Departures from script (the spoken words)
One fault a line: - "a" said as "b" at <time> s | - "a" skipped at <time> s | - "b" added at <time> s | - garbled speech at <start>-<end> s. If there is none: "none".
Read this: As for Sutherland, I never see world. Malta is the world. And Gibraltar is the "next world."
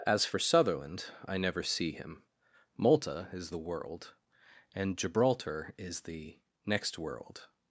- "world" said as "him" at 1.9 s